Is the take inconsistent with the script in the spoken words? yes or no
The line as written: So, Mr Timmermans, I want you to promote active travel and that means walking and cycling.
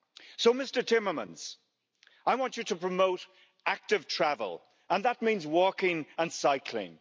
no